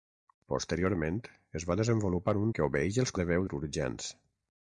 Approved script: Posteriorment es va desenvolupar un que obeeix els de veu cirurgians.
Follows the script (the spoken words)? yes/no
yes